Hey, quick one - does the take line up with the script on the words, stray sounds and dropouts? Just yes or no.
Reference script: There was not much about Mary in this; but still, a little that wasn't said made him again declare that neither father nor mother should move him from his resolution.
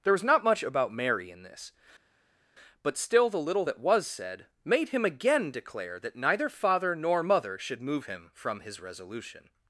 no